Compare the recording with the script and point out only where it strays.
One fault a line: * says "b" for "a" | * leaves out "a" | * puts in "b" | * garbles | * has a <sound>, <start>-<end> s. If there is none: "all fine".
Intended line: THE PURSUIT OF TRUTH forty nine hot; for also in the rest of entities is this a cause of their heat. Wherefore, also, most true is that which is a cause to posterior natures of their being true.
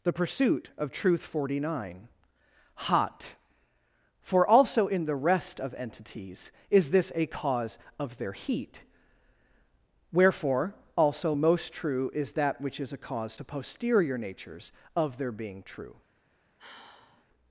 * has a sigh, 16.6-17.2 s